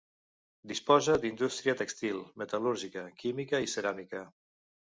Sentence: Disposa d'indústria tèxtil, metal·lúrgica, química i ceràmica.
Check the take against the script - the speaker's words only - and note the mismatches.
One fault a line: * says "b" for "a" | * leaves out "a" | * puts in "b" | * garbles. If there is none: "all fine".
all fine